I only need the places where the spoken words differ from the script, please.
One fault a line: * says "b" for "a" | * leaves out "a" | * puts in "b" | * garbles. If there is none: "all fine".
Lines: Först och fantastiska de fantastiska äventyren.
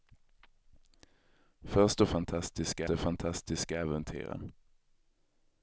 all fine